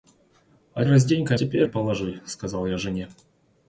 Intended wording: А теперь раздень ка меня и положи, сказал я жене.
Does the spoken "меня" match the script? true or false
false